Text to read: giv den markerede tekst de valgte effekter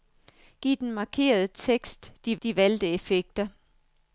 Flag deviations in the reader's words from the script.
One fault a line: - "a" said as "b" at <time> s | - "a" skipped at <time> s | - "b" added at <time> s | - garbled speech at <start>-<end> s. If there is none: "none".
- "de" added at 2.4 s